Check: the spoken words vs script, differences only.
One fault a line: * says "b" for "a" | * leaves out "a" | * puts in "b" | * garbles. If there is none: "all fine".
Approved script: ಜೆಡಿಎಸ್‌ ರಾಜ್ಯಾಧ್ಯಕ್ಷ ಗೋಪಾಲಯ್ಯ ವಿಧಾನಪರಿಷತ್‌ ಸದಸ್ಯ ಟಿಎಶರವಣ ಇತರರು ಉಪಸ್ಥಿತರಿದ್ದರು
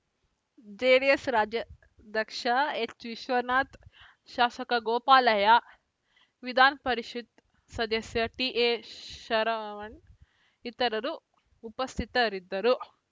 * puts in "ಎಚ್‌ವಿಶ್ವನಾಥ್ ಶಾಸಕ"